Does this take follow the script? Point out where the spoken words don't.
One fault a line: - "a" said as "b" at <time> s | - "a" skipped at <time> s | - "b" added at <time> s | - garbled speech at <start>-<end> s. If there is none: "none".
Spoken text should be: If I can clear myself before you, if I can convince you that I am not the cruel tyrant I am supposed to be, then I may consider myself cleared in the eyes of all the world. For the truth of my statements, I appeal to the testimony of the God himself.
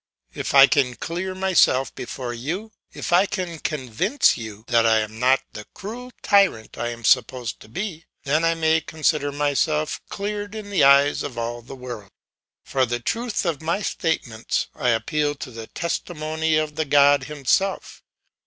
none